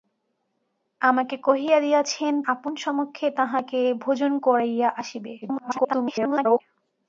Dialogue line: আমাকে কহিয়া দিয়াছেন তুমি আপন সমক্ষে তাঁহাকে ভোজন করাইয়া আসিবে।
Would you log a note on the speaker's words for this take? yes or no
yes